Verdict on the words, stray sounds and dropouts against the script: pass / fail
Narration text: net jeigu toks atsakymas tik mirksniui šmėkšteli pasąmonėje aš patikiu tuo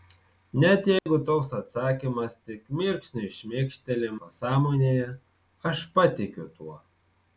fail